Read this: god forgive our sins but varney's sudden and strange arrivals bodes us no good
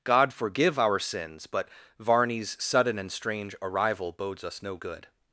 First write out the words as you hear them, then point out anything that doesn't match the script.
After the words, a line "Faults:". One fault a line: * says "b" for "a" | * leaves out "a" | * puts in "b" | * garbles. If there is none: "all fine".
god forgive our sins but varney's sudden and strange arrival bodes us no good
Faults:
* says "arrival" for "arrivals"